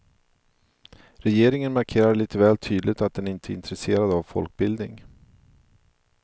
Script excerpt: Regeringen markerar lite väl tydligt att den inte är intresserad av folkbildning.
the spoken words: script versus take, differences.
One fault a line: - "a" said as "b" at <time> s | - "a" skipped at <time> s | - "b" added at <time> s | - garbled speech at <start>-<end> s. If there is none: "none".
none